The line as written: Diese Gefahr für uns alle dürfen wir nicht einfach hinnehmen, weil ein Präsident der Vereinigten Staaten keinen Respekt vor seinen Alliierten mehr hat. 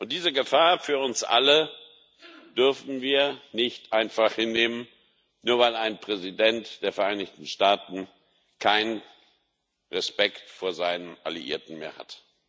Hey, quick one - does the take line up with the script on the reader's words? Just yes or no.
no